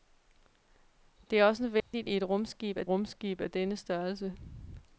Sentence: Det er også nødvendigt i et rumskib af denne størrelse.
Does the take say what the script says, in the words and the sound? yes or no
no